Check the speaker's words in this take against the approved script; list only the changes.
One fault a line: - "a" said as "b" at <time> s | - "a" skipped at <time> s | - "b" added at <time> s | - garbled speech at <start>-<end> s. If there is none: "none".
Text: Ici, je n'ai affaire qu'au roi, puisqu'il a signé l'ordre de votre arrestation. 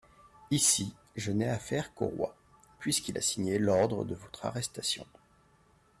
none